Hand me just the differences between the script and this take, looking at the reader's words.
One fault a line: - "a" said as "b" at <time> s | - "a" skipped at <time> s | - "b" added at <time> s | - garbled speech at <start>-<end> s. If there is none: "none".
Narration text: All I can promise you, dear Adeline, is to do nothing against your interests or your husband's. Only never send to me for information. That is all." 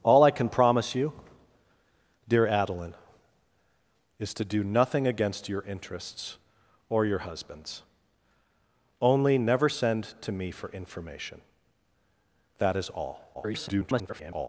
- garbled speech at 13.3-14.5 s